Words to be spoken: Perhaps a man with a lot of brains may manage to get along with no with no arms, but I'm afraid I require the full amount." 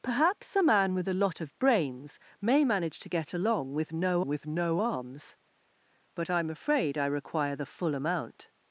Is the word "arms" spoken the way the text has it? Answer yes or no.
yes